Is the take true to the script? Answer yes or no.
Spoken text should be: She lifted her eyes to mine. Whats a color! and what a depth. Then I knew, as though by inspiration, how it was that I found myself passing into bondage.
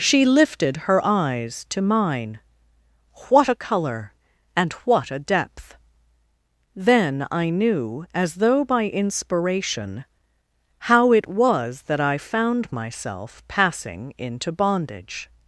no